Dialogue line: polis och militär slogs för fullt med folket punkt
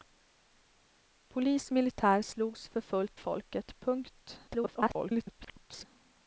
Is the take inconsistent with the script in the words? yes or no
yes